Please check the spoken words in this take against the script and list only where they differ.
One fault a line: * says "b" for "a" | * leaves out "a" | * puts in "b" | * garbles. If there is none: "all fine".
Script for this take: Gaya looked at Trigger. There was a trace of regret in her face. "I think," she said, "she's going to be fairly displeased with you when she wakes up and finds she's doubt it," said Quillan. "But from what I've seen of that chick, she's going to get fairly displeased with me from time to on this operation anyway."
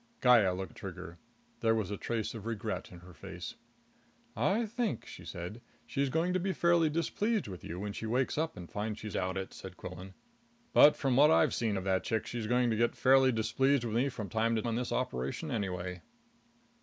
all fine